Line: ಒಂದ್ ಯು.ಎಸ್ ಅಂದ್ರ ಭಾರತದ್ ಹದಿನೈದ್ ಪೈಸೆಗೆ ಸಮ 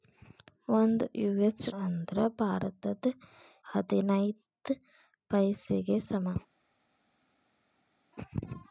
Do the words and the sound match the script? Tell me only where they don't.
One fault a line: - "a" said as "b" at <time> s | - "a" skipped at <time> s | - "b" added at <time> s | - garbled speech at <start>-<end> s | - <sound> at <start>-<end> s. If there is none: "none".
none